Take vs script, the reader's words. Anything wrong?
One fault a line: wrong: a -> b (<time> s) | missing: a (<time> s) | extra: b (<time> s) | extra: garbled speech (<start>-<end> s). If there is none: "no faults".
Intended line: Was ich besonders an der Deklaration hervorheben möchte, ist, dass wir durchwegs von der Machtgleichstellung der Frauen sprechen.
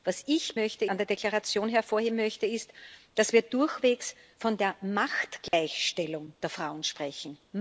wrong: besonders -> möchte (0.6 s)